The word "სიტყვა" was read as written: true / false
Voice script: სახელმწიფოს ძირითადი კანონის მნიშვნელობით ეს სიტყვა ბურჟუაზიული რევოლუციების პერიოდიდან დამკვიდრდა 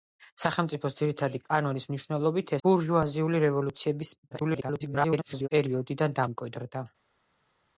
false